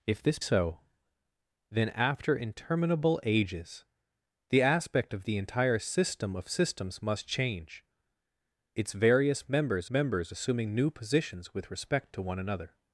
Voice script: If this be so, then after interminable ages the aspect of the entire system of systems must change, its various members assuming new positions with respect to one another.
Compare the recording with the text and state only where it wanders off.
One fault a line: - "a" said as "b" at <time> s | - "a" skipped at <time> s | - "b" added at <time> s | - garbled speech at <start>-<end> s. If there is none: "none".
- "be" skipped at 0.4 s
- "members" added at 9.9 s